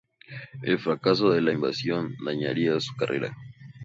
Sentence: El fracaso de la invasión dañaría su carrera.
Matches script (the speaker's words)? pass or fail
pass